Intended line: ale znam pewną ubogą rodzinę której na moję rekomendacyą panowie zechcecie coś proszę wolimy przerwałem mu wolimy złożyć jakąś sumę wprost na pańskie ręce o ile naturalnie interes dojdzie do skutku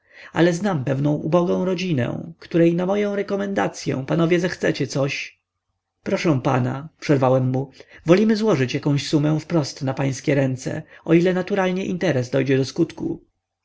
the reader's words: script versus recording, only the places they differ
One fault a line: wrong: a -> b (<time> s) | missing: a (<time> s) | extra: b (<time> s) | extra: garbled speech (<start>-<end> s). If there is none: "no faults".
wrong: wolimy -> pana (6.4 s)